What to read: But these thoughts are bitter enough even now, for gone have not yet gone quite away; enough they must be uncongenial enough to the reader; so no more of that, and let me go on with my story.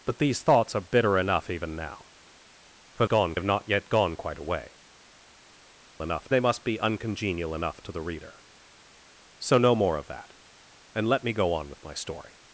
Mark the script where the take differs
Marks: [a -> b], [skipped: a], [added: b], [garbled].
But these thoughts are bitter enough even now, for gone have not yet gone quite away; enough they must be uncongenial enough to the reader; so no more of that, and let me go on with my story.